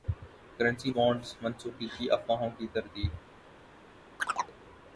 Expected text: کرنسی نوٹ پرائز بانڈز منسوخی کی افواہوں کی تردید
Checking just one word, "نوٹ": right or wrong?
wrong